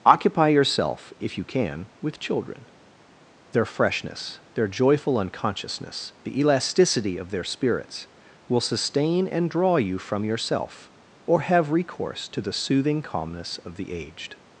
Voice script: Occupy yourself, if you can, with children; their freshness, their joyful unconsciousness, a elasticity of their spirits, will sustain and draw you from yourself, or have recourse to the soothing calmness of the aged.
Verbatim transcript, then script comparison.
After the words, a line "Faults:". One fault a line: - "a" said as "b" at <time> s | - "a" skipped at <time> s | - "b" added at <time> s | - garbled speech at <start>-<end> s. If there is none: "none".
Occupy yourself, if you can, with children; their freshness, their joyful unconsciousness, the elasticity of their spirits, will sustain and draw you from yourself, or have recourse to the soothing calmness of the aged.
Faults:
- "a" said as "the" at 6.2 s